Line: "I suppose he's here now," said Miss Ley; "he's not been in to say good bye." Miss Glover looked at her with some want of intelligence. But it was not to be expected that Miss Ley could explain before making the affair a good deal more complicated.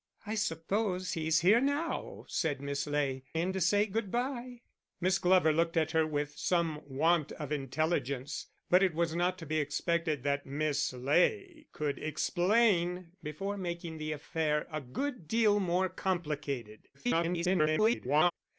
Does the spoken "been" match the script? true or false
false